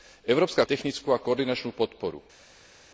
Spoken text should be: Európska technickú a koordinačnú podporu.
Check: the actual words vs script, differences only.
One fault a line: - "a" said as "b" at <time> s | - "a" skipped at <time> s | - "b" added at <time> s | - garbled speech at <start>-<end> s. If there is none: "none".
none